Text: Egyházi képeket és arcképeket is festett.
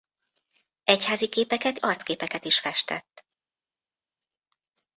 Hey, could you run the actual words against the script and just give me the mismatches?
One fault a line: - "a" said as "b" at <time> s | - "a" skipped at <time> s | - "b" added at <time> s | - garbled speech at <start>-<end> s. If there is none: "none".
- "és" skipped at 1.8 s